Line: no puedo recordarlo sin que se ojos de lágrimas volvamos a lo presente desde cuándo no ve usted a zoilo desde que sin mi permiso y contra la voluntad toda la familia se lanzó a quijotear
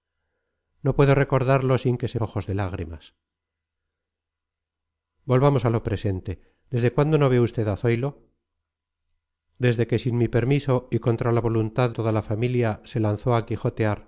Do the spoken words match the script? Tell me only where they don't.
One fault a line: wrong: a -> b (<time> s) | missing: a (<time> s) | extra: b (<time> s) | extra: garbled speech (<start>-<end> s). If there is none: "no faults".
no faults